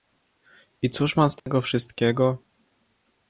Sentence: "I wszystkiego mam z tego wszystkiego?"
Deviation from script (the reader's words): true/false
true